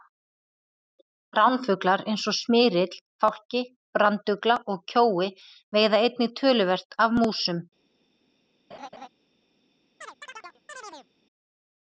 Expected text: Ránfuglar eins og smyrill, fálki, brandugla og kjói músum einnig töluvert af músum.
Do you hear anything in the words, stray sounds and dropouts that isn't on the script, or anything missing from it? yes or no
yes